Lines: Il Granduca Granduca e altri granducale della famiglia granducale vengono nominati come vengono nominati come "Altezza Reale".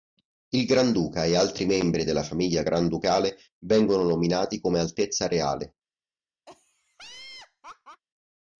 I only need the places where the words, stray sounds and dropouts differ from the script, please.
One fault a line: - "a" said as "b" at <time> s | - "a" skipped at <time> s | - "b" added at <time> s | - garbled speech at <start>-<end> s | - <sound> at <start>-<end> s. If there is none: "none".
- "Granduca" skipped at 1.2 s
- "granducale" said as "membri" at 1.7 s
- "vengono nominati come" skipped at 4.8 s
- laugh at 6.5-8.0 s